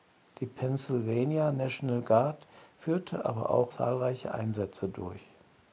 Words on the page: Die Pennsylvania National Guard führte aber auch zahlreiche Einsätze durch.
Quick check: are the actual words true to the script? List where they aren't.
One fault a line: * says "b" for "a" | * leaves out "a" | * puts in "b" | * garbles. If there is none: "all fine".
all fine